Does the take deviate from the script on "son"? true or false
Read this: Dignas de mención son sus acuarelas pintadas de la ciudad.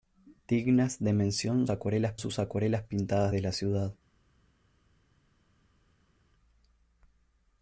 true